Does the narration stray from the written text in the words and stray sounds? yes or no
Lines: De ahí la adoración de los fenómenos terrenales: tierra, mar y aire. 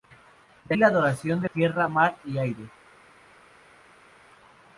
yes